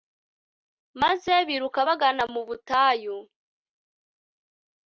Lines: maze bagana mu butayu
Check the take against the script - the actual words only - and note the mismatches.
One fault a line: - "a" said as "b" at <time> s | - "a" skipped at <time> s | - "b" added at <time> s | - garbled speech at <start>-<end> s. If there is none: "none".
- "biruka" added at 1.5 s